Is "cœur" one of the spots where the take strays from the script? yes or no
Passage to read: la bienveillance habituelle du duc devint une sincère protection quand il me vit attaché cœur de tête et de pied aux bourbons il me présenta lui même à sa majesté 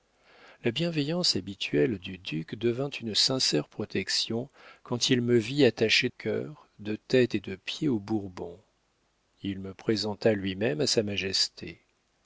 no